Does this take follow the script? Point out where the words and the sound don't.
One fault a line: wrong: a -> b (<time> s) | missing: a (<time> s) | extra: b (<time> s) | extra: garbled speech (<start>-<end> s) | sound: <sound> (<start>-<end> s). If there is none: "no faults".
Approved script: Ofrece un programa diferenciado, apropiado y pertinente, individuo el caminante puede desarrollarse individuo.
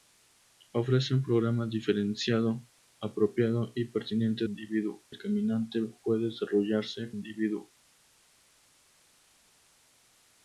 no faults